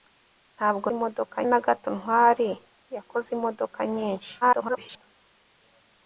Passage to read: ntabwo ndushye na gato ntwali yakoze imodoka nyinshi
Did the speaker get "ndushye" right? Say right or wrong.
wrong